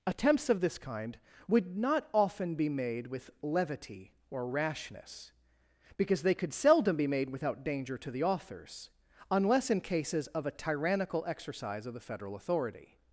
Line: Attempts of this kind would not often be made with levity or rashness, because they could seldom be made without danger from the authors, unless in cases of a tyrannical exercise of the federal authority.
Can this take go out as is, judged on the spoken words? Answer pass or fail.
fail